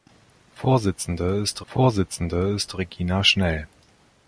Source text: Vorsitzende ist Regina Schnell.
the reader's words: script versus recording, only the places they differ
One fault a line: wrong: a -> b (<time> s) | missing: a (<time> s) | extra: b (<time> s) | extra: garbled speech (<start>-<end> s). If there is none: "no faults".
extra: vorsitzende ist (1.7 s)